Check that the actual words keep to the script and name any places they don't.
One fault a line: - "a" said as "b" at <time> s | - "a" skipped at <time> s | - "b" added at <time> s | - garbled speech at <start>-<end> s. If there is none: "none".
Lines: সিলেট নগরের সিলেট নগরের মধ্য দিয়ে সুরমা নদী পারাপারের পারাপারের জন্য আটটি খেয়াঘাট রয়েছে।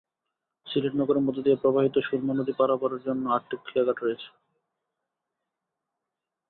- "সিলেট নগরের" skipped at 1.2 s
- "প্রবাহিত" added at 1.6 s
- "পারাপারের" skipped at 3.0 s